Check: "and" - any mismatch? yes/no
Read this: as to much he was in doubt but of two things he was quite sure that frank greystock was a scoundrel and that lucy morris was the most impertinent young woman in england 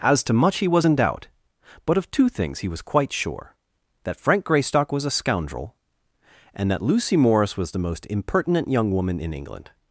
no